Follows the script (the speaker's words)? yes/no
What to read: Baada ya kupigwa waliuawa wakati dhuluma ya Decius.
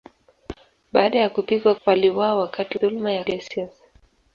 yes